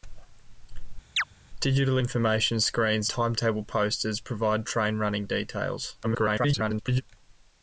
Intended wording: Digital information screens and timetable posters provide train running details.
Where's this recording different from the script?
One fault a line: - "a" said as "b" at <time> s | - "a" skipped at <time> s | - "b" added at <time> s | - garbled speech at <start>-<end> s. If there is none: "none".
- "and" skipped at 3.1 s
- garbled speech at 6.0-7.0 s